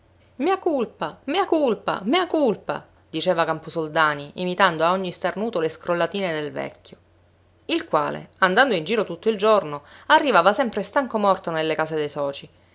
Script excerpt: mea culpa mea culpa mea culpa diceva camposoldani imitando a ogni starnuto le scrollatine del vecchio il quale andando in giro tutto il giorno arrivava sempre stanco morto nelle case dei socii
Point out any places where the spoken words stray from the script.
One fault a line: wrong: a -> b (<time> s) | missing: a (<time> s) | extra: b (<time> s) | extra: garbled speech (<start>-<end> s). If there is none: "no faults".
no faults